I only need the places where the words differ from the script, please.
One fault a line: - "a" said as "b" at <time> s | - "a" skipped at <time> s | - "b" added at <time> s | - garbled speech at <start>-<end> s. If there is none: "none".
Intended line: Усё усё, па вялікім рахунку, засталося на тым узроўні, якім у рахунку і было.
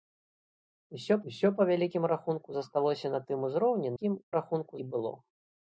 none